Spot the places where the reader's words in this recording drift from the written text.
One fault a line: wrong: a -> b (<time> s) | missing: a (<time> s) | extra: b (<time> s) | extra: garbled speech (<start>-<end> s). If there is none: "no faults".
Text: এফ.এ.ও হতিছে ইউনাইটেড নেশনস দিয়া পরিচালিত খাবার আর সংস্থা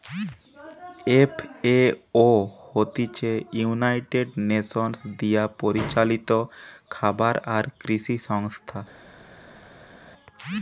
extra: কৃষি (7.8 s)